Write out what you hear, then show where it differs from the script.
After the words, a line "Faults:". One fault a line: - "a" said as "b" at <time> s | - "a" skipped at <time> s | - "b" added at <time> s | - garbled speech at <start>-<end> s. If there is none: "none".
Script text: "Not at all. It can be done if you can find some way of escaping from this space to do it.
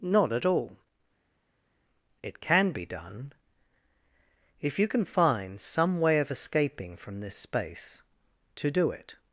"Not at all. It can be done if you can find some way of escaping from this space to do it.
Faults:
none